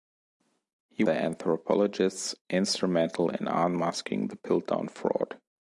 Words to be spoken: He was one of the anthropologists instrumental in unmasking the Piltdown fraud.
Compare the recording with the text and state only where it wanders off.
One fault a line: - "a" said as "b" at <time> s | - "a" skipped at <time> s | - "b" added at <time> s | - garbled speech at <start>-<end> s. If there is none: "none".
- "was one of" skipped at 1.0 s